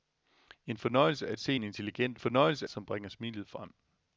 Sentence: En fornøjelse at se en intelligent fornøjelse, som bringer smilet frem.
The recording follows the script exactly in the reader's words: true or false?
true